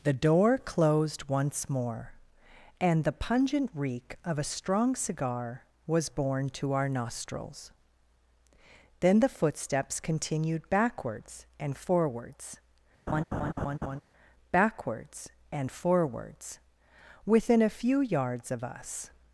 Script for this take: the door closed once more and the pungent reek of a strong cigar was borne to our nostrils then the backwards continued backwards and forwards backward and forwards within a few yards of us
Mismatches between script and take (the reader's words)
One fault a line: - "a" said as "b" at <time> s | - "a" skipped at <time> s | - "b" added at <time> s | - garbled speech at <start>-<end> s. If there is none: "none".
- "backwards" said as "footsteps" at 9.3 s
- "backward" said as "backwards" at 14.5 s